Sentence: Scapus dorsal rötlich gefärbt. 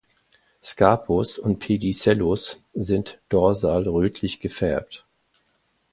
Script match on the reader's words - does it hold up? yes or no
no